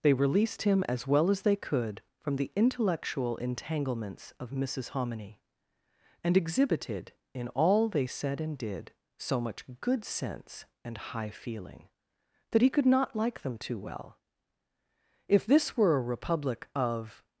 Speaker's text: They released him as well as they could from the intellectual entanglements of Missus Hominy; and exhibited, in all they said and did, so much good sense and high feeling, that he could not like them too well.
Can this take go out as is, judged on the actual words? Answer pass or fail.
fail